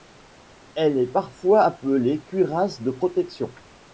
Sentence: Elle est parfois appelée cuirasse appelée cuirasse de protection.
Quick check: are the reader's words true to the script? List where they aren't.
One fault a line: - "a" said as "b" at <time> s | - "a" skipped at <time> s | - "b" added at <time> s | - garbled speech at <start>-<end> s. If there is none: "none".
- "appelée cuirasse" skipped at 2.8 s